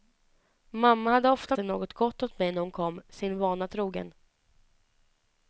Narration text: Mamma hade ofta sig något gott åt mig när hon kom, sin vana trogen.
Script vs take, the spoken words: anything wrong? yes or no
no